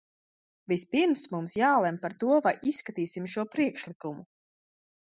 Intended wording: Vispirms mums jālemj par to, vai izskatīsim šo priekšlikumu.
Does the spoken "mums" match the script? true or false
true